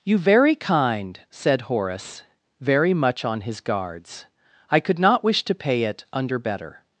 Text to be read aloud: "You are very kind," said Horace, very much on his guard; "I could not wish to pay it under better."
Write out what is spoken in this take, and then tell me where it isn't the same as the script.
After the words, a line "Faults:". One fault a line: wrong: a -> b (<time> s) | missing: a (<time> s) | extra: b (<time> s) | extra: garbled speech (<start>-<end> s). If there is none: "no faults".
"You very kind," said Horace, very much on his guards; "I could not wish to pay it under better."
Faults:
missing: are (0.2 s)
wrong: guard -> guards (3.6 s)